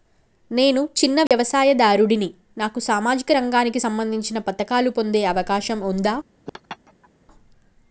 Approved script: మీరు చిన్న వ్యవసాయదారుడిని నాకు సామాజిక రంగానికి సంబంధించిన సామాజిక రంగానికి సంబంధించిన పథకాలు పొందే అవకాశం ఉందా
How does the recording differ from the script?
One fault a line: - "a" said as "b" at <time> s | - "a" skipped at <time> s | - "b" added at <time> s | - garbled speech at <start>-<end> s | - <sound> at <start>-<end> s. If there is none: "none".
- "మీరు" said as "నేను" at 0.5 s
- dropout at 1.3-1.3 s
- "సామాజిక రంగానికి సంబంధించిన" skipped at 4.4 s
- laugh at 6.5-7.1 s